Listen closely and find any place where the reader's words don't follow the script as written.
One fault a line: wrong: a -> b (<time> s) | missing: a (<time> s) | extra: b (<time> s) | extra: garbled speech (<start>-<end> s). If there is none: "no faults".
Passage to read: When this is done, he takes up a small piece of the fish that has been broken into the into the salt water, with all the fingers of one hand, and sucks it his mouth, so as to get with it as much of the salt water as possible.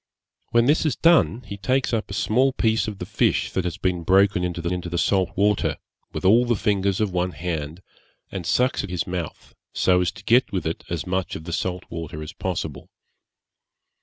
no faults